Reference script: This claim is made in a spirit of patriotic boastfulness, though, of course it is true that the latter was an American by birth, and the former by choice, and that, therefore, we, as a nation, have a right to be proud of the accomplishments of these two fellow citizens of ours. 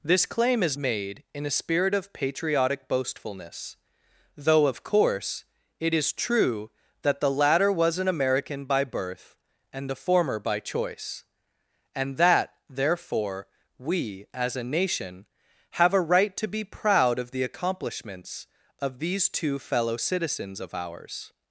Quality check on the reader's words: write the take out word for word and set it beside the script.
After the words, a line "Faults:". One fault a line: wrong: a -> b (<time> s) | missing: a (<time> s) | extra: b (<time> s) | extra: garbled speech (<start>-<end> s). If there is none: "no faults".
This claim is made in a spirit of patriotic boastfulness, though, of course it is true that the latter was an American by birth, and the former by choice, and that, therefore, we, as a nation, have a right to be proud of the accomplishments of these two fellow citizens of ours.
Faults:
no faults